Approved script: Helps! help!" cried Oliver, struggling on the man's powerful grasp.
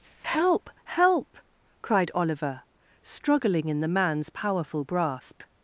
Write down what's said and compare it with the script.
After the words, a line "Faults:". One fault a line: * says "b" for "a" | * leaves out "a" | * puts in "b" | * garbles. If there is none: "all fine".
Help! help!" cried Oliver, struggling in the man's powerful grasp.
Faults:
* says "Help" for "Helps"
* says "in" for "on"